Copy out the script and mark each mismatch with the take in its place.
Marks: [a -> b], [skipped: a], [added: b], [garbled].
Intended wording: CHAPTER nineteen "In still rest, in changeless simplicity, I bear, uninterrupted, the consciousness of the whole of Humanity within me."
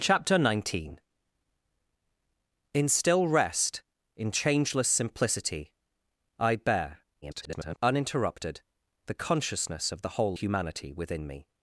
CHAPTER nineteen "In still rest, in changeless simplicity, I bear, [garbled] uninterrupted, the consciousness of the whole [skipped: of] Humanity within me."